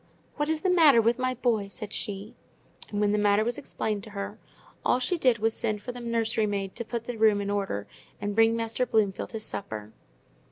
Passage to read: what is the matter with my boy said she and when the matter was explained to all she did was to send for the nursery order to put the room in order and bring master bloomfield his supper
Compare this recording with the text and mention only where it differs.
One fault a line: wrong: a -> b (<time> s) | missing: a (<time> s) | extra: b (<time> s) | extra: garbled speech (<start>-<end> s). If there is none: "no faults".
extra: her (4.1 s)
wrong: order -> maid (6.5 s)